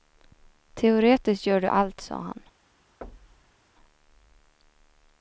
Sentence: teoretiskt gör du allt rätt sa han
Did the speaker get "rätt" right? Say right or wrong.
wrong